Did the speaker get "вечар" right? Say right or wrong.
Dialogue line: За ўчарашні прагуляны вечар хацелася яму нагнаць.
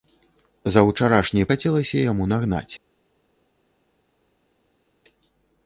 wrong